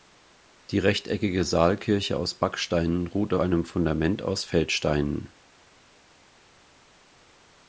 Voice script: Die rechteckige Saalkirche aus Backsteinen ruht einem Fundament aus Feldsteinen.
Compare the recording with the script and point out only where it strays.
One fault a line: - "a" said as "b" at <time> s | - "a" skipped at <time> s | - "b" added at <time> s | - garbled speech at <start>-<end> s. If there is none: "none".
none